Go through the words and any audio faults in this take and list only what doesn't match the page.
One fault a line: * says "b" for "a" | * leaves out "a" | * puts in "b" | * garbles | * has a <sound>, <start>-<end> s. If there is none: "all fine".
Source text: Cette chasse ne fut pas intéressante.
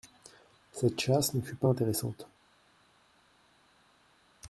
all fine